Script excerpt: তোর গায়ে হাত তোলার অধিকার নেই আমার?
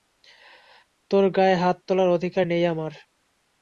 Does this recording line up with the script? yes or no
yes